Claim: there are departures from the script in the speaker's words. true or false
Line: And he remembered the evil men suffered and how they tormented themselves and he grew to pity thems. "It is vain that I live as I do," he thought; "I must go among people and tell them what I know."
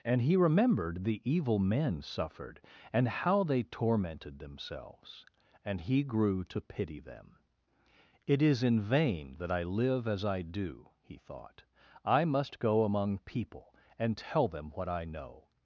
true